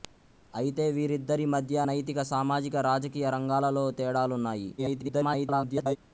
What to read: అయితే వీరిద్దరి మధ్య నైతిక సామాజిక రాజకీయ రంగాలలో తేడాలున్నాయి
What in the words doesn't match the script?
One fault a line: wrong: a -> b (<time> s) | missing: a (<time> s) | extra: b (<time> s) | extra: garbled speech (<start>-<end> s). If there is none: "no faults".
extra: garbled speech (4.8-6.0 s)